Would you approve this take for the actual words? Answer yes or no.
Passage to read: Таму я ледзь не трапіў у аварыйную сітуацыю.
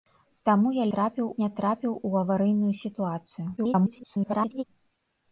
no